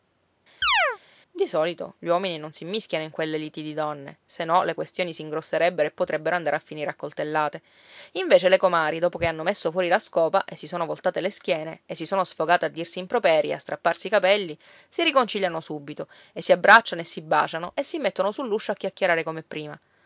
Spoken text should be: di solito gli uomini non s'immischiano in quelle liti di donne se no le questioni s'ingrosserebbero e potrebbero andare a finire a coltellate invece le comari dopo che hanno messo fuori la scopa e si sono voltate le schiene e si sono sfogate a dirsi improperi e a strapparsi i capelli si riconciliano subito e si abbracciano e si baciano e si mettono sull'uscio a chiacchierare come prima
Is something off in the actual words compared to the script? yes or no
no